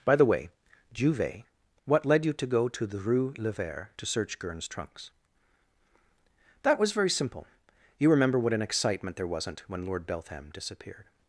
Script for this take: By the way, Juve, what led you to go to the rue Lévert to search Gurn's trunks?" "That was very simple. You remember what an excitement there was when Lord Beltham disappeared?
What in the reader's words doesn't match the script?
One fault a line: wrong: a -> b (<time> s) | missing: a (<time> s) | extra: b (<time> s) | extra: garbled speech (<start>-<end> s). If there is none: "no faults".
wrong: was -> wasn't (9.3 s)